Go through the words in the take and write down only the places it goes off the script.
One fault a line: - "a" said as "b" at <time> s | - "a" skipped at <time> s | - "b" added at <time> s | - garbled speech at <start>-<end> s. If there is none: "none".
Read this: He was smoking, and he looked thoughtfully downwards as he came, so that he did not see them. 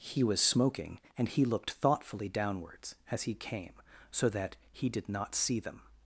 none